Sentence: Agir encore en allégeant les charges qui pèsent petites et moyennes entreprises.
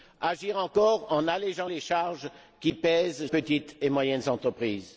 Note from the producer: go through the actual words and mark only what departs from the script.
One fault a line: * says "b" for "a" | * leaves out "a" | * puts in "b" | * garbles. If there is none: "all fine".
all fine